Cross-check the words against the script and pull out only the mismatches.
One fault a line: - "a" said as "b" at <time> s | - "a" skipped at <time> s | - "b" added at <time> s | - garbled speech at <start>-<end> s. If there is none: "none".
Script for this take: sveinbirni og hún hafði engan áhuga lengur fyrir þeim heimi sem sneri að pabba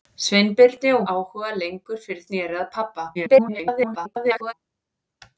- "hún hafði engan" skipped at 1.0 s
- "þeim heimi sem" skipped at 2.2 s
- garbled speech at 3.1-4.5 s